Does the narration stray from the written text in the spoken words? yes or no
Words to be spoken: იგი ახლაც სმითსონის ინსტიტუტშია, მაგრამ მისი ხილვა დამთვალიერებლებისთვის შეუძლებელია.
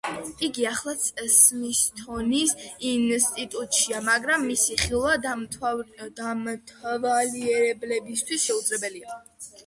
no